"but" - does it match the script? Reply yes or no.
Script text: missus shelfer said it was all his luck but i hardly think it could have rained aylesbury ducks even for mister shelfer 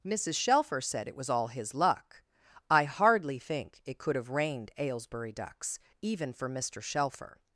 no